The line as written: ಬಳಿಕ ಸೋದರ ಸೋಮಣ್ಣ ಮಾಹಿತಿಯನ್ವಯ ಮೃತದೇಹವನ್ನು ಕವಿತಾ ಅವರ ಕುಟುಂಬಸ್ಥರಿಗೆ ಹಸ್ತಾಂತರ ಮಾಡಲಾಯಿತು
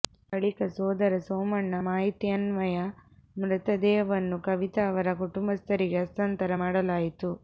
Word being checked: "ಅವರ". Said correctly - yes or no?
yes